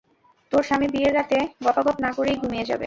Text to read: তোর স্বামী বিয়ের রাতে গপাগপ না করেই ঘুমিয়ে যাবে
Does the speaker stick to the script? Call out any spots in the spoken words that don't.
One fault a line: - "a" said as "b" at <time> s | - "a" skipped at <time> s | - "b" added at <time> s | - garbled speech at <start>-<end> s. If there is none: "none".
none